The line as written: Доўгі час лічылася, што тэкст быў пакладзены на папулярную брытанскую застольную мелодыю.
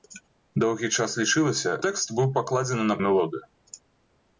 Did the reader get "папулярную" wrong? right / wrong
wrong